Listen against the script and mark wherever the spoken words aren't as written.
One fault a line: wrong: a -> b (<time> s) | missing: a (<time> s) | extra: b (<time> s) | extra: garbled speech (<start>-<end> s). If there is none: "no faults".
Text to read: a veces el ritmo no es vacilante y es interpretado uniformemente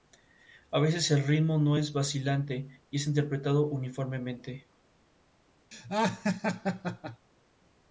no faults